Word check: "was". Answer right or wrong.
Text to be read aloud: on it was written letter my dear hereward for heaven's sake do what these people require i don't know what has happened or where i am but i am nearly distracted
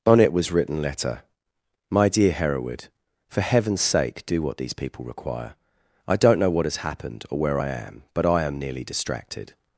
right